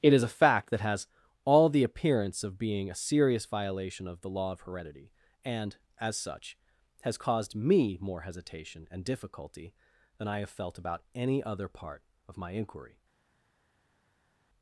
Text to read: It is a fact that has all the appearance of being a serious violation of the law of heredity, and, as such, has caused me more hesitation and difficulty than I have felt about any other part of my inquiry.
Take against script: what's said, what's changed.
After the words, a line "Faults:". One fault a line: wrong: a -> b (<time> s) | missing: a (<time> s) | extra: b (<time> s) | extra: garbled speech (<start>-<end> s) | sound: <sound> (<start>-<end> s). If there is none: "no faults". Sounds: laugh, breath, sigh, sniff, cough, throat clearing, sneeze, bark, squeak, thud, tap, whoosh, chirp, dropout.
It is a fact that has all the appearance of being a serious violation of the law of heredity, and, as such, has caused me more hesitation and difficulty than I have felt about any other part of my inquiry.
Faults:
no faults